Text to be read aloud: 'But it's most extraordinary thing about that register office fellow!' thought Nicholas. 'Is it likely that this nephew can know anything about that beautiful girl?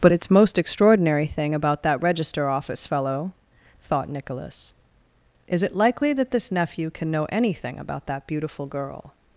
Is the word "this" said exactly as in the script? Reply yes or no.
yes